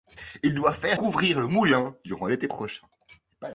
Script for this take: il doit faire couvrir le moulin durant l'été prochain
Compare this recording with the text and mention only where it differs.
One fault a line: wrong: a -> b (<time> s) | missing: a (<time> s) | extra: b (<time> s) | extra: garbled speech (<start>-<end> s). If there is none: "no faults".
no faults